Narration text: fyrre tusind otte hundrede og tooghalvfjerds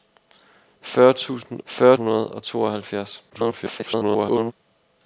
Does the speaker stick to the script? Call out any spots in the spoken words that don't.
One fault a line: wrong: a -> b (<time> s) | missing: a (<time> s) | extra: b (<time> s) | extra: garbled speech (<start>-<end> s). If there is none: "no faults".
wrong: otte -> fyrre (1.6 s)
extra: garbled speech (3.3-4.5 s)